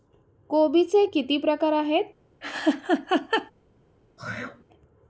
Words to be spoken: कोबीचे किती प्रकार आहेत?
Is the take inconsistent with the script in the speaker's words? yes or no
no